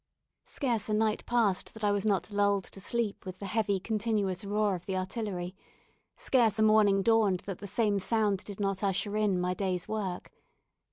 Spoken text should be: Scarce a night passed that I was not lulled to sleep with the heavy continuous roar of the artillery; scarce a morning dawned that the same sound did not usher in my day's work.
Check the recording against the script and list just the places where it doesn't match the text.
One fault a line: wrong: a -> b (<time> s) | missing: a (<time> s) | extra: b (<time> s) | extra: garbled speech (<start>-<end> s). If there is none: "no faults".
no faults